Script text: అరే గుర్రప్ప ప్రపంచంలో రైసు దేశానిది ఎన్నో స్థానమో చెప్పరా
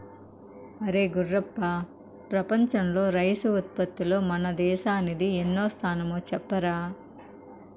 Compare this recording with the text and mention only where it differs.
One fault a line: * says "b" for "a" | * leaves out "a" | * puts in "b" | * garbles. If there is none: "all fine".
* puts in "ఉత్పత్తిలో మన"